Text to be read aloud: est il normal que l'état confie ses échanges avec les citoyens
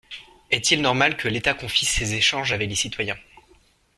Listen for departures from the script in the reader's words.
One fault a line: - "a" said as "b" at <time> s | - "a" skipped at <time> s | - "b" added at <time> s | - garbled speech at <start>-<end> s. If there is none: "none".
none